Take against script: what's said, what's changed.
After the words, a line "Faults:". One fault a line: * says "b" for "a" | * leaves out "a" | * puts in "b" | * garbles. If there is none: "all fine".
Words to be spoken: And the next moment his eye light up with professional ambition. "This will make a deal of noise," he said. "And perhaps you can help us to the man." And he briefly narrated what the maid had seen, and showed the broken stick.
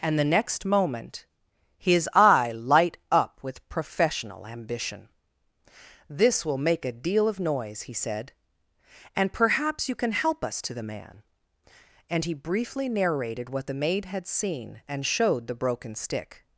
And the next moment his eye light up with professional ambition. "This will make a deal of noise," he said. "And perhaps you can help us to the man." And he briefly narrated what the maid had seen, and showed the broken stick.
Faults:
all fine